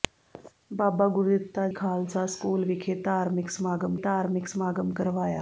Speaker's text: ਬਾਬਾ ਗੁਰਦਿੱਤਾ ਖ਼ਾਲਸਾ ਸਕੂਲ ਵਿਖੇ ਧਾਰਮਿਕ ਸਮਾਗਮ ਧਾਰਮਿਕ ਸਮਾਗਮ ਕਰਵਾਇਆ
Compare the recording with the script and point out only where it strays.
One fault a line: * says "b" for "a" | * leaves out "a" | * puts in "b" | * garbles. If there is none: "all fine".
all fine